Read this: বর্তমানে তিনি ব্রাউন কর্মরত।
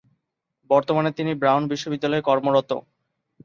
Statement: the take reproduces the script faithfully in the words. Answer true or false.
false